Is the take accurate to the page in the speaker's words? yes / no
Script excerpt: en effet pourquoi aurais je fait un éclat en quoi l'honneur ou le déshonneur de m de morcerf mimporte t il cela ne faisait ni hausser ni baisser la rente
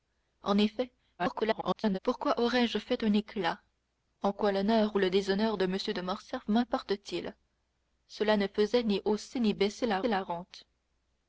no